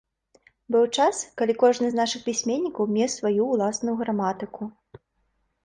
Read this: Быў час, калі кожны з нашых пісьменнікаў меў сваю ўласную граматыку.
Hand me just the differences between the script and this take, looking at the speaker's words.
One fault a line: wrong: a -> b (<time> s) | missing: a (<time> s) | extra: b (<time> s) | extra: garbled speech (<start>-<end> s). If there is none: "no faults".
no faults